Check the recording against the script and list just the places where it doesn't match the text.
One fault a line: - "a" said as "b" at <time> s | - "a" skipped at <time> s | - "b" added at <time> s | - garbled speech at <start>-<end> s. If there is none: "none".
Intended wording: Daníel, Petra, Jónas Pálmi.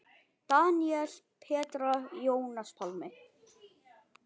none